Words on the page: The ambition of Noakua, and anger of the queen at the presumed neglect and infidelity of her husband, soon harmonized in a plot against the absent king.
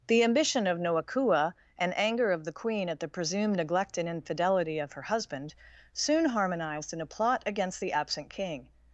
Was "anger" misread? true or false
false